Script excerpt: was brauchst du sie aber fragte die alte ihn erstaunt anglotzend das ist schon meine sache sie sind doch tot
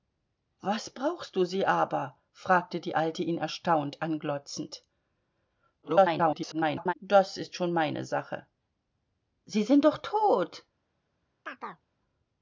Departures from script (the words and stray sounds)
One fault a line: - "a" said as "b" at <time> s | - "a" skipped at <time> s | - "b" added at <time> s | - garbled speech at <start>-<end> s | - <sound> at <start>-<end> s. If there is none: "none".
- garbled speech at 5.8-6.9 s
- chirp at 11.5-11.9 s